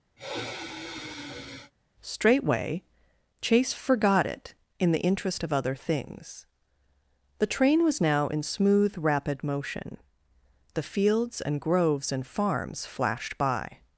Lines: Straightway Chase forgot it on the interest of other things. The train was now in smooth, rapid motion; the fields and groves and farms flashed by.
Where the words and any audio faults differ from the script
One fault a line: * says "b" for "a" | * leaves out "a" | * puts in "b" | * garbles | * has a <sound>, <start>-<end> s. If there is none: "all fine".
* has a sigh, 0.2-1.7 s
* says "in" for "on"